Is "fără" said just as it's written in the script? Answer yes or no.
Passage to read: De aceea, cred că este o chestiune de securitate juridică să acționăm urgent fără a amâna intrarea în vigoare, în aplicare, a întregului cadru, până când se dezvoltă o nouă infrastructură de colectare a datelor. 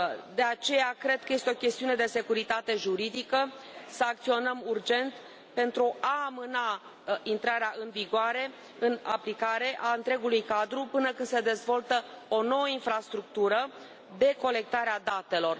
no